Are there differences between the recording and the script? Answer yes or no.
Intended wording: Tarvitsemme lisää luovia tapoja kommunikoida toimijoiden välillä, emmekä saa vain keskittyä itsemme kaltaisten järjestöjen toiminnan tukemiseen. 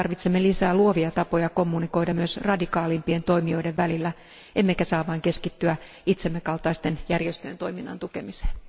yes